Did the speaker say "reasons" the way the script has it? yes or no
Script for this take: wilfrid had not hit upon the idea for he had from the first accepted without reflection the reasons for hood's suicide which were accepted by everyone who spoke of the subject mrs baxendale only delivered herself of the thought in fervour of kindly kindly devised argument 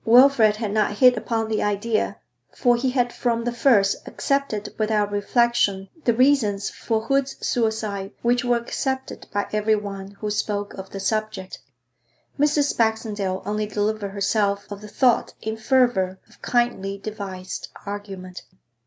yes